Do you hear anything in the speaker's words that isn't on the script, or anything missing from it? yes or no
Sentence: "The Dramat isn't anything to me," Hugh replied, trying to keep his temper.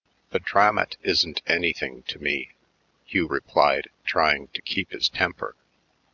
no